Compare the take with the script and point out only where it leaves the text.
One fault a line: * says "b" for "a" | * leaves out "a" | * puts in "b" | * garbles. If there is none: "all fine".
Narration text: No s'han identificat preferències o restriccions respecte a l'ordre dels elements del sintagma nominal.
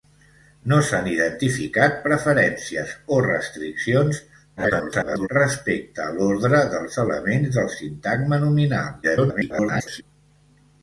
* garbles
* garbles